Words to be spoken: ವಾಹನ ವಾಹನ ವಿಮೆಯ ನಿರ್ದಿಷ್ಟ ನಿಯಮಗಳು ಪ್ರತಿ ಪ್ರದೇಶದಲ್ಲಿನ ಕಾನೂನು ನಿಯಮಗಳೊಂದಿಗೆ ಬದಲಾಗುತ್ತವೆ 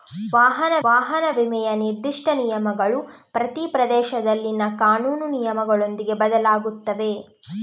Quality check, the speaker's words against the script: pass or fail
pass